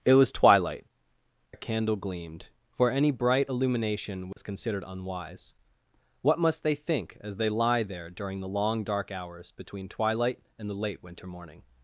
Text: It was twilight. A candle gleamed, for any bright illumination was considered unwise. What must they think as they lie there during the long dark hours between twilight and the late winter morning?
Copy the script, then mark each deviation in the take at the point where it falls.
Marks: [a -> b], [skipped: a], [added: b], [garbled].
It was twilight. A candle gleamed, for any bright illumination was considered unwise. What must they think as they lie there during the long dark hours between twilight and the late winter morning?